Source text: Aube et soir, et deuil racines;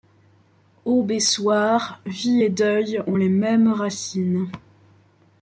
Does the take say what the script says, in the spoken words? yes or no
no